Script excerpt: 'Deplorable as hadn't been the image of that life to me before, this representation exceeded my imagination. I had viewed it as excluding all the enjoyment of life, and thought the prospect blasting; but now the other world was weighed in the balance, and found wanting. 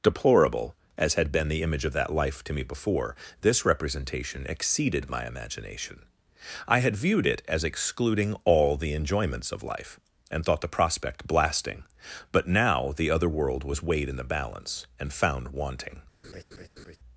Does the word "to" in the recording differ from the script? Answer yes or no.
no